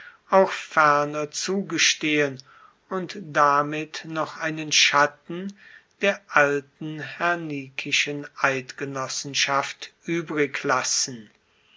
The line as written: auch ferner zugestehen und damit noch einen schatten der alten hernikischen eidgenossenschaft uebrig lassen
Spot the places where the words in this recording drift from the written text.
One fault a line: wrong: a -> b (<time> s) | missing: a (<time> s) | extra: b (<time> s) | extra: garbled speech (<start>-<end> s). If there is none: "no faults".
no faults